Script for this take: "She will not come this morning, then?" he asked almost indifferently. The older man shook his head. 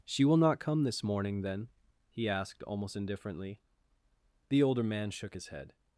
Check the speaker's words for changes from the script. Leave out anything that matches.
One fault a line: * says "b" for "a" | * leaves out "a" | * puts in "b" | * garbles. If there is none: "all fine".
all fine